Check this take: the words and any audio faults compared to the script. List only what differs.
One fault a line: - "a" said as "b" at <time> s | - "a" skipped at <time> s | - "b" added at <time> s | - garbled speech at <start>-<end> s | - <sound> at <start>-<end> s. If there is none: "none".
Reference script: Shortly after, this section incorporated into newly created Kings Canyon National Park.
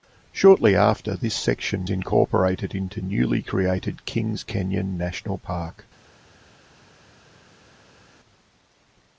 none